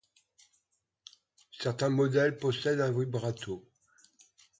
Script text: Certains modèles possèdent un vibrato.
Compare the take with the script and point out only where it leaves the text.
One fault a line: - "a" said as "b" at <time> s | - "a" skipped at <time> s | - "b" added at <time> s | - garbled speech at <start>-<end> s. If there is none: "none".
none